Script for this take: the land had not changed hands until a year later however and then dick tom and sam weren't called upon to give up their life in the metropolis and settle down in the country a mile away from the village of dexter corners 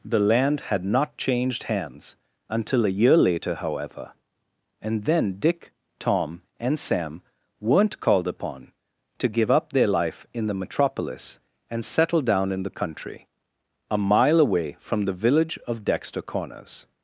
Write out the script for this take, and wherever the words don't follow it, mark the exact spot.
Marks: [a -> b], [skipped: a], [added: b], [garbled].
the land had not changed hands until a year later however and then dick tom and sam weren't called upon to give up their life in the metropolis and settle down in the country a mile away from the village of dexter corners